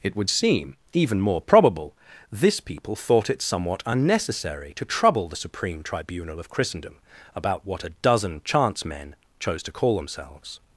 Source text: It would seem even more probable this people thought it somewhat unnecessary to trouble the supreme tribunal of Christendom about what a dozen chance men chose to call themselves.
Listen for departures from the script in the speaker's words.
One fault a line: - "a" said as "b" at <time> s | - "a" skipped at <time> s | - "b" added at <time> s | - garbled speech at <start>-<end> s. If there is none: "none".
none